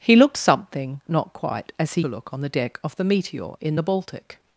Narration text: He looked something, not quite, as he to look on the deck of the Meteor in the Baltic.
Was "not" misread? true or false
false